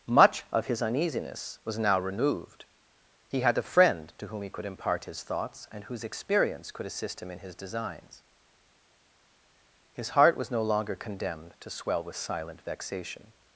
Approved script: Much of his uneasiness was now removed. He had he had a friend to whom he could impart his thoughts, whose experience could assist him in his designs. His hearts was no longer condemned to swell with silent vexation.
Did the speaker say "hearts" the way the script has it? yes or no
no